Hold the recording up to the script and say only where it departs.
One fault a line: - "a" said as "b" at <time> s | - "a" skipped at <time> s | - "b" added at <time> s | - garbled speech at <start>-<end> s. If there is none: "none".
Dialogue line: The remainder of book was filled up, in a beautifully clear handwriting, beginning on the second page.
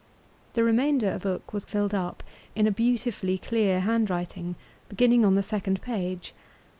none